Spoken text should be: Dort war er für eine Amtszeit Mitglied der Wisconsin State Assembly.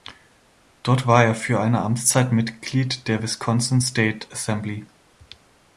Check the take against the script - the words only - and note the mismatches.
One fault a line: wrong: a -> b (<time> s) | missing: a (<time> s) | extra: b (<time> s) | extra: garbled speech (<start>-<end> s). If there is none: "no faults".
no faults